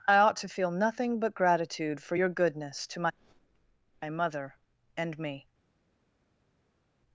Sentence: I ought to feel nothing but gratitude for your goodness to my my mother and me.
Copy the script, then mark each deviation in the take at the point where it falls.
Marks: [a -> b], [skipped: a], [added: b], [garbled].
I ought to feel nothing but gratitude for your goodness to my my mother and me.